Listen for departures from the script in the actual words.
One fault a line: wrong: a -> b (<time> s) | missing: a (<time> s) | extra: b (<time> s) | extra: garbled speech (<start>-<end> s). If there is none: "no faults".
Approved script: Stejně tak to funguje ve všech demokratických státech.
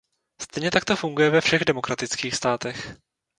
no faults